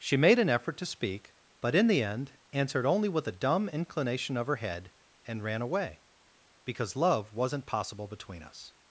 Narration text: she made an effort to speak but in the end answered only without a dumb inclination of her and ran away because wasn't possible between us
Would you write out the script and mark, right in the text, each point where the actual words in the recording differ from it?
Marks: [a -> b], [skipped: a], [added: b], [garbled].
she made an effort to speak but in the end answered only [without -> with] a dumb inclination of her [added: head] and ran away because [added: love] wasn't possible between us